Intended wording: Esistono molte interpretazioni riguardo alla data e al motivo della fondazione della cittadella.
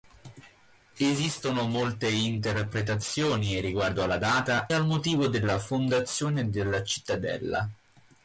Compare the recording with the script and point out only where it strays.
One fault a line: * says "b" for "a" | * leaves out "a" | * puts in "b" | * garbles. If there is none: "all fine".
* leaves out "e"